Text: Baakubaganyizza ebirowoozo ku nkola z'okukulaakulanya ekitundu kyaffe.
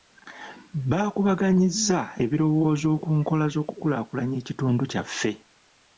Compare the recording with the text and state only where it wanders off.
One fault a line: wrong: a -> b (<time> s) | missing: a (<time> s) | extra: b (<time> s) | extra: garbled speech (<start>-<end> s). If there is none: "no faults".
no faults